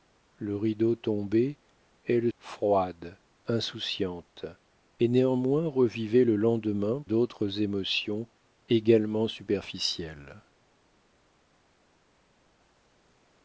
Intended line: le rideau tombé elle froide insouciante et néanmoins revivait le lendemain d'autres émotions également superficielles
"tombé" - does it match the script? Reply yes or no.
yes